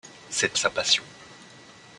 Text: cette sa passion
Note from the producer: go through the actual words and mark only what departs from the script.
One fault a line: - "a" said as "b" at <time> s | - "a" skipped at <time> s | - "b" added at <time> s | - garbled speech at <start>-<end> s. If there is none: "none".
none